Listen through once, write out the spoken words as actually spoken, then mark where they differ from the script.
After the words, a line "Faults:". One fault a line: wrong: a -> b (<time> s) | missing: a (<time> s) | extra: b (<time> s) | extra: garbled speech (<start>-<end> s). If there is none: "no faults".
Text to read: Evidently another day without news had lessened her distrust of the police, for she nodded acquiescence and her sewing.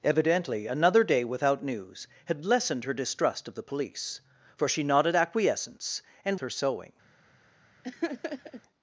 Evidently another day without news had lessened her distrust of the police, for she nodded acquiescence and her sewing.
Faults:
no faults